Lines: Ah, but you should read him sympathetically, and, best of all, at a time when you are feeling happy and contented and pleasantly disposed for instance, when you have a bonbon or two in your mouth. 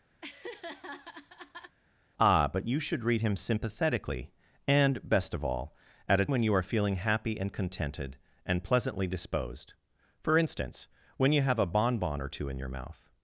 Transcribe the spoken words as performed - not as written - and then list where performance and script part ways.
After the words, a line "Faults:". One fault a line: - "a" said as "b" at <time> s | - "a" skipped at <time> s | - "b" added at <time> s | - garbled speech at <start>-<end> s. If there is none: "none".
Ah, but you should read him sympathetically, and, best of all, at a when you are feeling happy and contented and pleasantly disposed for instance, when you have a bonbon or two in your mouth.
Faults:
- "time" skipped at 6.3 s